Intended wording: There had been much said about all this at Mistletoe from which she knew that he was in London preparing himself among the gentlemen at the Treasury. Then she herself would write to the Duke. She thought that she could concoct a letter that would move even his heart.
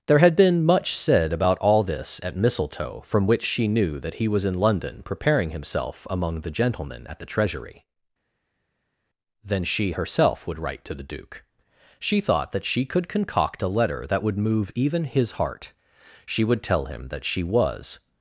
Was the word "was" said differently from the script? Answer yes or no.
no